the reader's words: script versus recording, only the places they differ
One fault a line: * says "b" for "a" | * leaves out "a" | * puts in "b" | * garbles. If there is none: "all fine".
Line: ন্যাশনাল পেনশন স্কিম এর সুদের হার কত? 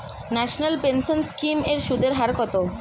all fine